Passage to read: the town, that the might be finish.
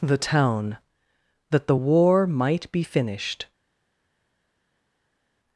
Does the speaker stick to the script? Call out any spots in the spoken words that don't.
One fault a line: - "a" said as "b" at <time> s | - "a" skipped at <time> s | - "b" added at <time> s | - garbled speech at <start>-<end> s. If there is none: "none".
- "war" added at 1.7 s
- "finish" said as "finished" at 2.8 s